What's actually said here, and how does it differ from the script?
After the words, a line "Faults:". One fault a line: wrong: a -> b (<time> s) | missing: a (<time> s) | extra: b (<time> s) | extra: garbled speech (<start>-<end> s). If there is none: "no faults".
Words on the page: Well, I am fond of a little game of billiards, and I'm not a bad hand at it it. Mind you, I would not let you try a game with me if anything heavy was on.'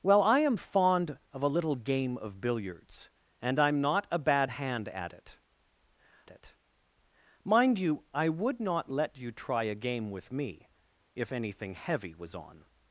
Well, I am fond of a little game of billiards, and I'm not a bad hand at it it. Mind you, I would not let you try a game with me if anything heavy was on.'
Faults:
no faults